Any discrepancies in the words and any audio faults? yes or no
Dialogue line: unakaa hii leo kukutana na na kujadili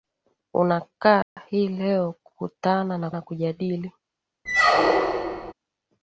yes